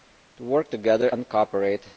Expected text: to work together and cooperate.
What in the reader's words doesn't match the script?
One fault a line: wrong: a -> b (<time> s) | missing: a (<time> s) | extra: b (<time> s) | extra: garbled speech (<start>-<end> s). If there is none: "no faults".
no faults